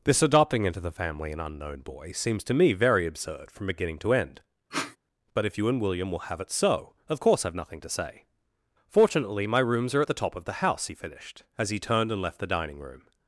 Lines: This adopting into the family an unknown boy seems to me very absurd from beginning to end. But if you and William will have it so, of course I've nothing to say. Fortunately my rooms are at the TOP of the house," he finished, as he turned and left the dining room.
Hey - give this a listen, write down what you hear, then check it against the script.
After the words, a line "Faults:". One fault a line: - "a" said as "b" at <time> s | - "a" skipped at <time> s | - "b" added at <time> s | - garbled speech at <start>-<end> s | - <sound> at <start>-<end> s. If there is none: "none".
This adopting into the family an unknown boy seems to me very absurd from beginning to end. But if you and William will have it so, of course I've nothing to say. Fortunately my rooms are at the TOP of the house," he finished, as he turned and left the dining room.
Faults:
- sniff at 4.7-5.0 s